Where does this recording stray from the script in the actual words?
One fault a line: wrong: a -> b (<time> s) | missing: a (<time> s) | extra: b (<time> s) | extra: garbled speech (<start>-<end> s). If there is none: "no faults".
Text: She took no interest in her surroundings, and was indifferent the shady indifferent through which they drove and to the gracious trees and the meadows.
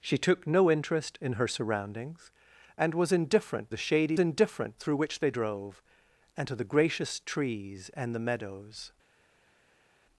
no faults